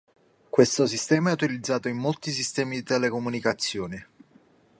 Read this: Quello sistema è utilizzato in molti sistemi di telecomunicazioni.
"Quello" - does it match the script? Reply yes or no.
no